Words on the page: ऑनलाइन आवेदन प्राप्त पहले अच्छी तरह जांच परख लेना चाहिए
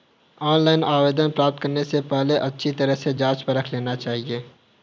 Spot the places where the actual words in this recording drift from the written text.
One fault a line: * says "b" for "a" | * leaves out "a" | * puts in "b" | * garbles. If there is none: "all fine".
* puts in "करने से"
* puts in "से"